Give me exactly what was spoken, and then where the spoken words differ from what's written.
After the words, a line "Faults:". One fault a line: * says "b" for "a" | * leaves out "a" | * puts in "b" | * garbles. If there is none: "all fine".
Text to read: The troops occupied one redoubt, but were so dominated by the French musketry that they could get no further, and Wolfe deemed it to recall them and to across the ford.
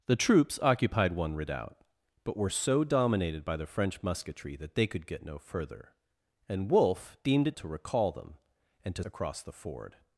The troops occupied one redoubt, but were so dominated by the French musketry that they could get no further, and Wolfe deemed it to recall them and to across the ford.
Faults:
all fine